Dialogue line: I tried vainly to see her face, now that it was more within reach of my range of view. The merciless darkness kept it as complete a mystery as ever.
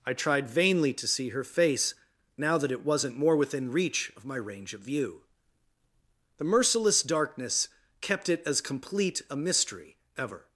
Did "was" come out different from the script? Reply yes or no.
yes